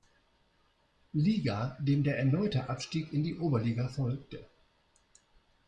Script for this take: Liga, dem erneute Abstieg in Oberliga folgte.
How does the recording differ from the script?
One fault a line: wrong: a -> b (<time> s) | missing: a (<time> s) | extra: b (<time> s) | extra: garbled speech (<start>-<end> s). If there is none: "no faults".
extra: der (2.0 s)
extra: die (3.2 s)